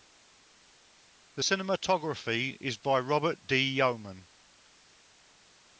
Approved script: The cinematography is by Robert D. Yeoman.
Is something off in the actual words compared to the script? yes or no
no